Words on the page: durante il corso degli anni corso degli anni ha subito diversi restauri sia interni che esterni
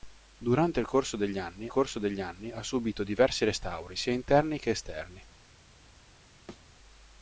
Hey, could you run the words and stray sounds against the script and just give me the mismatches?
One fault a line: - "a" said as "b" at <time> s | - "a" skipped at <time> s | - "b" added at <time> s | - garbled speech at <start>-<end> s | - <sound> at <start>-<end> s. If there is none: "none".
- thud at 6.5-6.7 s